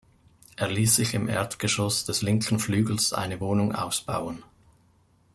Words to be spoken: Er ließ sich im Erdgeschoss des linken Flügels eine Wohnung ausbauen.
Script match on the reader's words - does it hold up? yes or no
yes